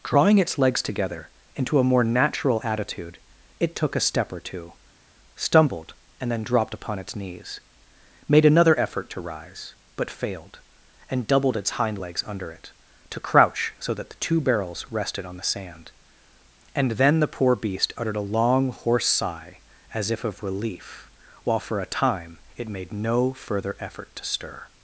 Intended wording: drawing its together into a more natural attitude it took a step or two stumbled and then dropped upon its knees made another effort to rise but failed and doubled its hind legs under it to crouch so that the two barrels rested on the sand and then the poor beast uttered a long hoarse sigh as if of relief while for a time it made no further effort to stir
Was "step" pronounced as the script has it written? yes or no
yes